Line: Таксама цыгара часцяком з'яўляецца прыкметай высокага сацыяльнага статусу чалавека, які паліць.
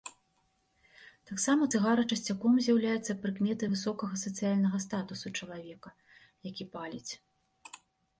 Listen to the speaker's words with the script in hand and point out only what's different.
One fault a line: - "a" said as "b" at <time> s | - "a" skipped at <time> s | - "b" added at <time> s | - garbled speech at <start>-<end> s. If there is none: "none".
none